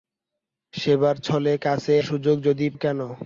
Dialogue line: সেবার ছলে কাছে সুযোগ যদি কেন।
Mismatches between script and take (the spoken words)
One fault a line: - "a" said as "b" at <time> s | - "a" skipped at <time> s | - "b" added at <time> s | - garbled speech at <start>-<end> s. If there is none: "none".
none